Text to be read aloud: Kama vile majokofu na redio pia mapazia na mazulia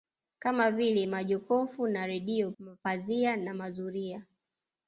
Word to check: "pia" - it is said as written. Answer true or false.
false